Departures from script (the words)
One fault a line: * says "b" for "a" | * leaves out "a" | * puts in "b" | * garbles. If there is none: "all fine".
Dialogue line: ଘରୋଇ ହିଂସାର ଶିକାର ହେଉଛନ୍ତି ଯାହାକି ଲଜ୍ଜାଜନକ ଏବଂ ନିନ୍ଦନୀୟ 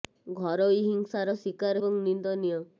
* leaves out "ହେଉଛନ୍ତି ଯାହାକି ଲଜ୍ଜାଜନକ"